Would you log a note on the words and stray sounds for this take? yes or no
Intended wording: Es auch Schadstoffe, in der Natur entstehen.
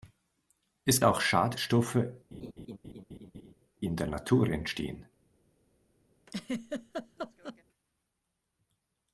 yes